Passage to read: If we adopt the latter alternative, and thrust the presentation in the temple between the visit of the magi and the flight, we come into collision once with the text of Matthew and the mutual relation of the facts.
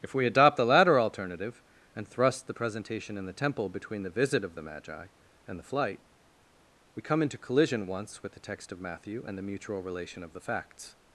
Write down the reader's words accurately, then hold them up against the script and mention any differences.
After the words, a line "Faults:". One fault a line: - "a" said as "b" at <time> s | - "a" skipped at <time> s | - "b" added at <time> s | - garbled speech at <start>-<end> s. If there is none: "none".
If we adopt the latter alternative, and thrust the presentation in the temple between the visit of the magi and the flight, we come into collision once with the text of Matthew and the mutual relation of the facts.
Faults:
none